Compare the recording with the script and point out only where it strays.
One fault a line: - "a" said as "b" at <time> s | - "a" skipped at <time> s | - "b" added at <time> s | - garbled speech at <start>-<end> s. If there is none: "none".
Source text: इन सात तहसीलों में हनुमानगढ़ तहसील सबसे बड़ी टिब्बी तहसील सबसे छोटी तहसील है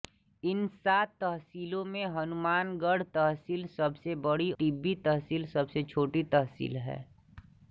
none